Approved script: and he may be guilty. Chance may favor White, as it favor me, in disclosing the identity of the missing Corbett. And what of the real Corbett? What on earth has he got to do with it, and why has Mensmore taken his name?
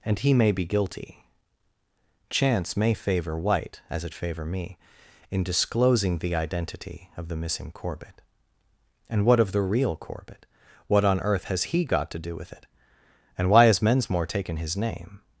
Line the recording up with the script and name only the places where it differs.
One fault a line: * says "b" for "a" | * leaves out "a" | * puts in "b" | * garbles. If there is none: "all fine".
all fine